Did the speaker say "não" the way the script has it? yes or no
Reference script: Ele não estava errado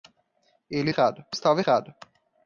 no